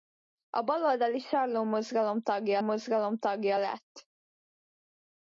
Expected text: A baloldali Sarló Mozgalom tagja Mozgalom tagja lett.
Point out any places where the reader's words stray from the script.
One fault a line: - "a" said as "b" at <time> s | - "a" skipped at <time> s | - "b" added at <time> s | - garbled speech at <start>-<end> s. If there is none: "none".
none